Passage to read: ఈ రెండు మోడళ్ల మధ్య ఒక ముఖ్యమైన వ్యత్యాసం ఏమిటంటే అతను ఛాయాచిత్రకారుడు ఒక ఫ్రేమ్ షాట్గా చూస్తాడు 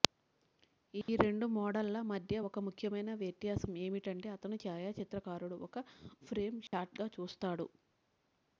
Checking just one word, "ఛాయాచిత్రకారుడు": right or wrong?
right